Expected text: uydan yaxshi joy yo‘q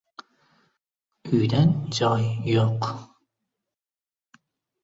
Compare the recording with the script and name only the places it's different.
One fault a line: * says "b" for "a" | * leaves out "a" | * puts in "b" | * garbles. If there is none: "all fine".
* leaves out "yaxshi"